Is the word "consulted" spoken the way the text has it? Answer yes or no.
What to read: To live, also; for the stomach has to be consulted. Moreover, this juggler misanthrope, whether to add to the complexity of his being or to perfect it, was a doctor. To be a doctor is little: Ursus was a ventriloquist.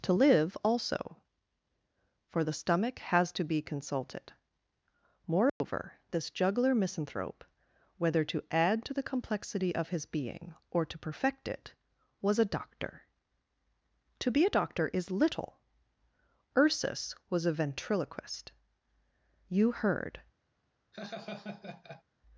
yes